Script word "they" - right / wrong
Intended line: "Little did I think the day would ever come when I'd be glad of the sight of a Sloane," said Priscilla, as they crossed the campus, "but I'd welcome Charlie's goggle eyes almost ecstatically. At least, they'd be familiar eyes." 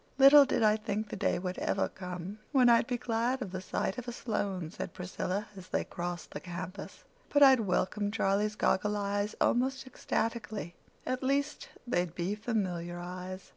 right